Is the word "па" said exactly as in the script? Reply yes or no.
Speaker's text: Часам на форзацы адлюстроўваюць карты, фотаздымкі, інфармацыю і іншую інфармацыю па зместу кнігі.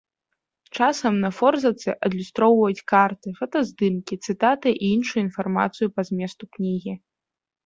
yes